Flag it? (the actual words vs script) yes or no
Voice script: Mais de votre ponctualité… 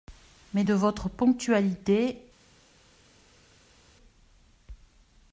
no